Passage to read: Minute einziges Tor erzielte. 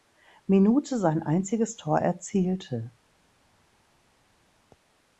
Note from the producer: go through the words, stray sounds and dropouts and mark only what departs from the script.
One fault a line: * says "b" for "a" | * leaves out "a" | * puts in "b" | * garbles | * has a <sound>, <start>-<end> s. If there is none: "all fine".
* puts in "sein"